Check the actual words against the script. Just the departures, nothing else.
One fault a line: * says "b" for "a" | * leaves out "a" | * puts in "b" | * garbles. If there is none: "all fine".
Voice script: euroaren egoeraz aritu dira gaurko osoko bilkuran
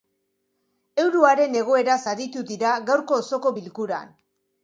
all fine